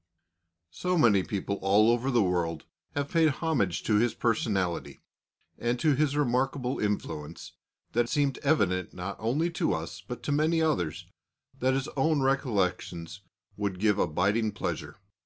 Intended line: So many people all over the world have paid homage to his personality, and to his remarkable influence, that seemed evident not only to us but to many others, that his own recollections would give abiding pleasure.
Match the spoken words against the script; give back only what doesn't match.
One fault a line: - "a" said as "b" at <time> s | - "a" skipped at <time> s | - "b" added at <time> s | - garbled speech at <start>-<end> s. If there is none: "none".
none